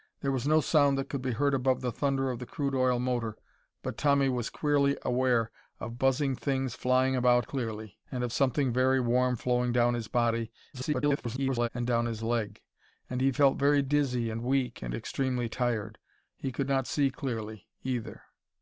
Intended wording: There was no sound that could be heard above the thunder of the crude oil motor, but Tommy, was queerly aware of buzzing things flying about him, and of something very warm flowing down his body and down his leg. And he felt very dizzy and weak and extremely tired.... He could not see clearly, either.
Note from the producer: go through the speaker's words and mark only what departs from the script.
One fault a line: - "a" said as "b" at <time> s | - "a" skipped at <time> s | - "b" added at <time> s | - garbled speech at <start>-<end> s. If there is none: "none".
- "him" said as "clearly" at 7.4 s
- garbled speech at 10.7-11.7 s